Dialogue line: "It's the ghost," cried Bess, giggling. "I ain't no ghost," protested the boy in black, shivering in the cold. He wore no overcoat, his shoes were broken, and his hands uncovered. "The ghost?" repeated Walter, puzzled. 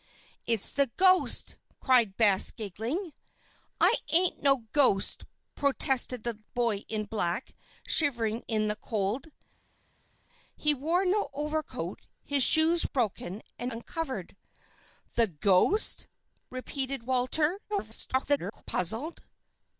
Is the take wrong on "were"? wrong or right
wrong